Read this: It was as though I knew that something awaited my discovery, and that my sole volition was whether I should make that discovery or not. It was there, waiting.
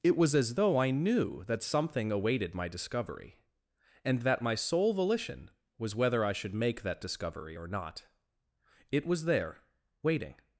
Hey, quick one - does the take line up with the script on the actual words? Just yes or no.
yes